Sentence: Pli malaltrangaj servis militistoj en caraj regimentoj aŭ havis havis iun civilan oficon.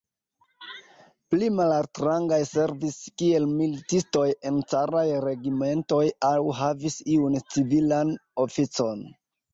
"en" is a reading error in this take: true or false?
false